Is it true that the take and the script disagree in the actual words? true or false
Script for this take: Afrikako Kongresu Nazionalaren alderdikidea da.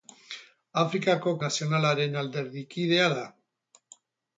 true